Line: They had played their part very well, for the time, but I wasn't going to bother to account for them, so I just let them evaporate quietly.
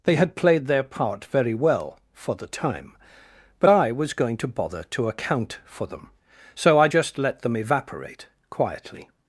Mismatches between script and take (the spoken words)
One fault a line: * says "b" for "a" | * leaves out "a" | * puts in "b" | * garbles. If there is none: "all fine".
* says "was" for "wasn't"